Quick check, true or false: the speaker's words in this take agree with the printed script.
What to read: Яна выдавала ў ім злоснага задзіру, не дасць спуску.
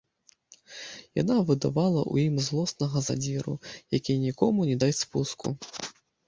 false